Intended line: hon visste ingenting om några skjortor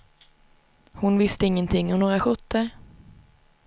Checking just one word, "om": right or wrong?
right